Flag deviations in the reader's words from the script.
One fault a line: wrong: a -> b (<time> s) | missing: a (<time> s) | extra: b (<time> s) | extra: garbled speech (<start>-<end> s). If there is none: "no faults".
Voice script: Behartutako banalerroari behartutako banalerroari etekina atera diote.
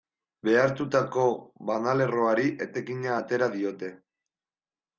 missing: behartutako banalerroari (2.5 s)